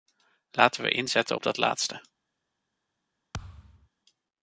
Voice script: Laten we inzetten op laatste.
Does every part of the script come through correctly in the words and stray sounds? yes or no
no